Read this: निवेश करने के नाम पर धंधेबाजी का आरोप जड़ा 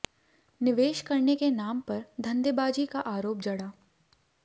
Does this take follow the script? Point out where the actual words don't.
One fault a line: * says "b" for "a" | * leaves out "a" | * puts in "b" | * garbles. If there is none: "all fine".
all fine